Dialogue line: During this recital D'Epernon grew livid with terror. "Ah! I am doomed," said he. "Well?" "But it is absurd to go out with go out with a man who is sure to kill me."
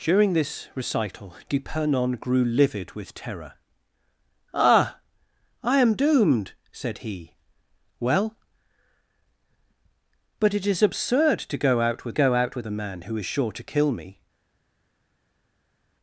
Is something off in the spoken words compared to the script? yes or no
no